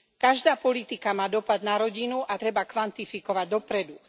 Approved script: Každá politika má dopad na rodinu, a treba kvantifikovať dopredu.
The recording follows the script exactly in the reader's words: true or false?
true